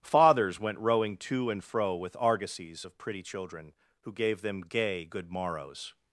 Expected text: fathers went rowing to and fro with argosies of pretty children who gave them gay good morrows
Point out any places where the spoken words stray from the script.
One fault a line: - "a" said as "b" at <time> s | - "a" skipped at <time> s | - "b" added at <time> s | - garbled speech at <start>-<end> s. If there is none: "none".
none